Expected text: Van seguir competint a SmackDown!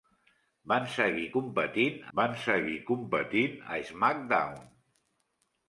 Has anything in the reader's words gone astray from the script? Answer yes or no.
yes